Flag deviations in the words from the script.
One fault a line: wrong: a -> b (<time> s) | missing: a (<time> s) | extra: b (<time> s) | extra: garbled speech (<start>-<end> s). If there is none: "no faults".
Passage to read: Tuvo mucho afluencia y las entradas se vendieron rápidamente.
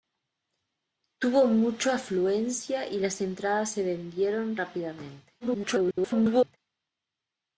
extra: garbled speech (5.4-6.6 s)